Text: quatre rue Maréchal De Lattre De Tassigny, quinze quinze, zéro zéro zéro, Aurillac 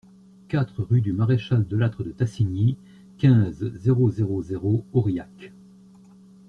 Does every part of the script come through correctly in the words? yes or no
no